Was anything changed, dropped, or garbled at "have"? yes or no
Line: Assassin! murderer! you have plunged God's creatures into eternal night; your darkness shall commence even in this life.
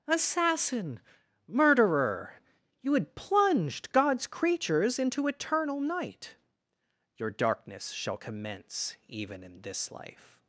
yes